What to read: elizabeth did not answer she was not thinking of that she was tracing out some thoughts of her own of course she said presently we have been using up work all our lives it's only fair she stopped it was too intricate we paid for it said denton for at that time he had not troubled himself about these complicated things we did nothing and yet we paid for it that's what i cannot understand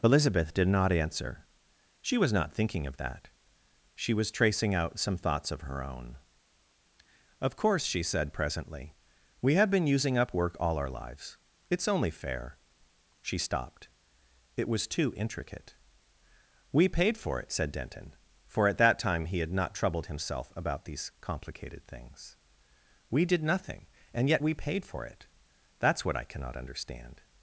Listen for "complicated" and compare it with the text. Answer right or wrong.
right